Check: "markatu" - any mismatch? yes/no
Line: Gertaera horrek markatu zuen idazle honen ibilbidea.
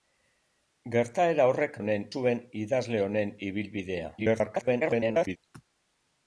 yes